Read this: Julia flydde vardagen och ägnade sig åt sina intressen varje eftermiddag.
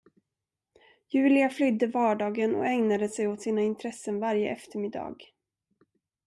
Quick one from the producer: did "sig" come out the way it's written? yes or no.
yes